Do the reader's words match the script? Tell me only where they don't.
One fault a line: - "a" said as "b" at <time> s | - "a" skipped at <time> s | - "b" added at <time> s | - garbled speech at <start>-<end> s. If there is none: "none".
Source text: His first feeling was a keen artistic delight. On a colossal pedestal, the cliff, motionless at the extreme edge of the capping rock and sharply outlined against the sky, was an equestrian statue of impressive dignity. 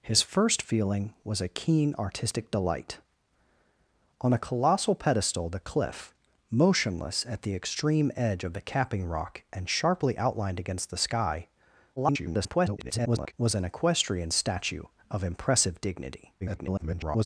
- garbled speech at 12.0-13.3 s
- garbled speech at 16.4-17.3 s